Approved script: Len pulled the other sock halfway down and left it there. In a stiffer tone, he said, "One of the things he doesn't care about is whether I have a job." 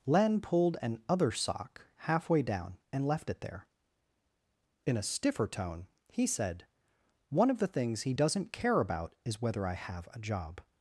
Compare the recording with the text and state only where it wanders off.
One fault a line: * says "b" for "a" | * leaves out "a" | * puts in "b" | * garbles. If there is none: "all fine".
* says "an" for "the"